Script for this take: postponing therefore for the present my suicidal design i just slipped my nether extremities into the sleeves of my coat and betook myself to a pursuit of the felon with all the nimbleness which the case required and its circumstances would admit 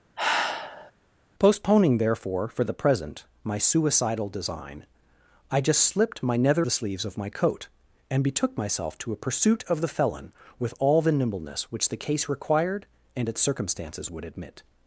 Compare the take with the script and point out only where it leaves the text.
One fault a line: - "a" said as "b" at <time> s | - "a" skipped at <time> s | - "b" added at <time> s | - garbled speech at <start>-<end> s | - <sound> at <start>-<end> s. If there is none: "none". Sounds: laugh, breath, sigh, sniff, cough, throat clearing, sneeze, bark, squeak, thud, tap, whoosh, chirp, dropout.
- sigh at 0.2-0.9 s
- "extremities into" skipped at 6.7 s